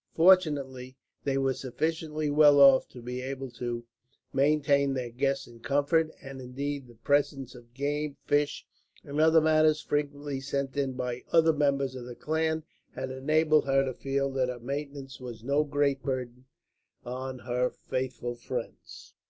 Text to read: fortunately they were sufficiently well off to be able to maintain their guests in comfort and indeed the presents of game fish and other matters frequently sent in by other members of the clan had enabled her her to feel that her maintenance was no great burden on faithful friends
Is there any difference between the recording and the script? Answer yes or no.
yes